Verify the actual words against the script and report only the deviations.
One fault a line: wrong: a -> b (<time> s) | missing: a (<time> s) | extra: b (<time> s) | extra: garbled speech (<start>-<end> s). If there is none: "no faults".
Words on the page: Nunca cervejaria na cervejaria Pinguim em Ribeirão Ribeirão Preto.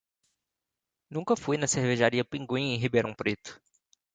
wrong: cervejaria -> fui (1.4 s)
missing: Ribeirão (3.1 s)